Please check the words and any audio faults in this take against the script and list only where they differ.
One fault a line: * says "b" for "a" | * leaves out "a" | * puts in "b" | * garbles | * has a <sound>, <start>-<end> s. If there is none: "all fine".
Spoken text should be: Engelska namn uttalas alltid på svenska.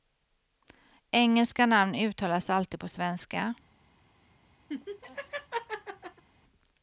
* has a laugh, 4.7-6.2 s